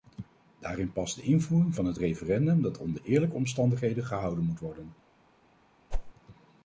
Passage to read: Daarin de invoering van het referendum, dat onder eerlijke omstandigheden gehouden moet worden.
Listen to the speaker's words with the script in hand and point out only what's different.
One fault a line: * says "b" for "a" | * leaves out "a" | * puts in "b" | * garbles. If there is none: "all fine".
* puts in "past"